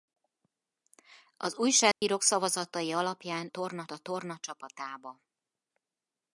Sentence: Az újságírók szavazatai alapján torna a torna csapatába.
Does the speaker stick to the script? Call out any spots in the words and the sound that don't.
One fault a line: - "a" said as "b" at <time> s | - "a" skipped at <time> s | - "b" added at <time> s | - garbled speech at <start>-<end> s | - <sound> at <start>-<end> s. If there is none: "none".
- dropout at 1.9-2.0 s